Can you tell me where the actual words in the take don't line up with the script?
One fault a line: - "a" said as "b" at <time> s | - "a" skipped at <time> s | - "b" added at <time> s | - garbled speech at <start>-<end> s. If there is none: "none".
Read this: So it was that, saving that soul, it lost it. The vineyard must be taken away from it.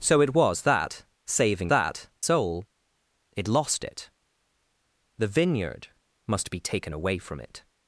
none